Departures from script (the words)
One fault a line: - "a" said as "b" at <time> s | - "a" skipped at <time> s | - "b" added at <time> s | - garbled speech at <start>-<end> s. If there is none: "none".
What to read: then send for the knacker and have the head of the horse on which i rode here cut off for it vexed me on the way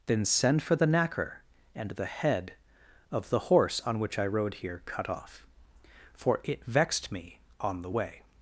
- "have" skipped at 1.9 s